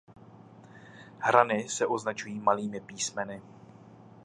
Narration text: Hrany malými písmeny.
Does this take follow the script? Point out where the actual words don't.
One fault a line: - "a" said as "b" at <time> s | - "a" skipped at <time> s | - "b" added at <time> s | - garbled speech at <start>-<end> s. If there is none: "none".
- "se označují" added at 1.7 s